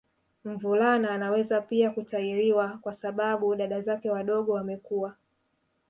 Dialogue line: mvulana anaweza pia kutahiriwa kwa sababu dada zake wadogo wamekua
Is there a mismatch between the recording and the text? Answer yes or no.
no